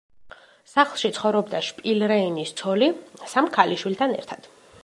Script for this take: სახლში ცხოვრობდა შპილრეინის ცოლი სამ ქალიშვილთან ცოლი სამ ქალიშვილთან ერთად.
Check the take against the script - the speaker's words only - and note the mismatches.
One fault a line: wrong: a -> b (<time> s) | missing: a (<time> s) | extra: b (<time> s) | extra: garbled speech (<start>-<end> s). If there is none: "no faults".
missing: ცოლი სამ ქალიშვილთან (4.2 s)